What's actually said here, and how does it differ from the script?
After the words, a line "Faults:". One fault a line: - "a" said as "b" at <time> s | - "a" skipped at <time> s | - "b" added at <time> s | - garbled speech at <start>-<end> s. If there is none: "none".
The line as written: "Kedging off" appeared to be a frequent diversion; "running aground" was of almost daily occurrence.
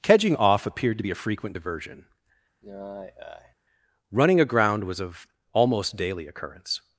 "Kedging off" appeared to be a frequent diversion; "running aground" was of almost daily occurrence.
Faults:
none